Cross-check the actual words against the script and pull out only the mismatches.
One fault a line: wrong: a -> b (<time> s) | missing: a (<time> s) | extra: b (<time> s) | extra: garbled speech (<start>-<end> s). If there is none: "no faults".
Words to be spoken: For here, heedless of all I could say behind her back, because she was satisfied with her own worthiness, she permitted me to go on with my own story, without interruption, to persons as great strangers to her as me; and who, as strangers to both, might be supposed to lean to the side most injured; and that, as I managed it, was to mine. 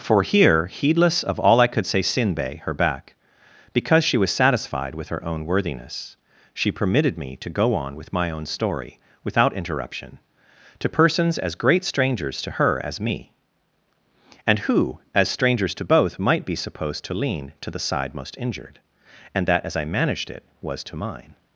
wrong: behind -> sinbe (2.0 s)